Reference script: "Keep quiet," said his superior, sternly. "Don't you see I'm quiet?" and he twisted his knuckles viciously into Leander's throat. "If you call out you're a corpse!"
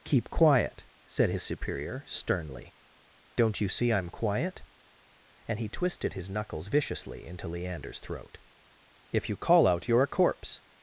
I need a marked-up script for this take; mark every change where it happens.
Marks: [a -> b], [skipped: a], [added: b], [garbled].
"Keep quiet," said his superior, sternly. "Don't you see I'm quiet?" and he twisted his knuckles viciously into Leander's throat. "If you call out you're a corpse!"